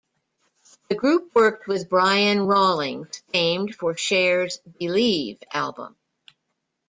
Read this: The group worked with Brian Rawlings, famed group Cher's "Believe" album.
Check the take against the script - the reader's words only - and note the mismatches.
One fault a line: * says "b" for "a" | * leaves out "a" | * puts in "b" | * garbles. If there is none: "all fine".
* says "for" for "group"